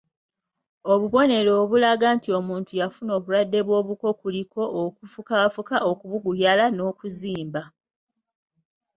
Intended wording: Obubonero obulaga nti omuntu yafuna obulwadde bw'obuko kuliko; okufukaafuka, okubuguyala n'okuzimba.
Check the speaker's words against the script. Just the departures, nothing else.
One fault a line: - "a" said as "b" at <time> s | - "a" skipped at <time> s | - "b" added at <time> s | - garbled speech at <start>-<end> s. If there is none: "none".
none